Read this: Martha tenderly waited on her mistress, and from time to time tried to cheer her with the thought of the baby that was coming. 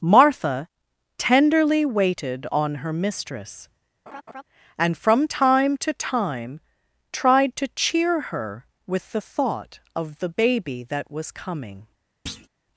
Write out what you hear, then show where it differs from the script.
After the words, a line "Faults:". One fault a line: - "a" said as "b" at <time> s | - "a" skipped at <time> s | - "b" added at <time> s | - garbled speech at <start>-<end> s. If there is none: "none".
Martha tenderly waited on her mistress, and from time to time tried to cheer her with the thought of the baby that was coming.
Faults:
none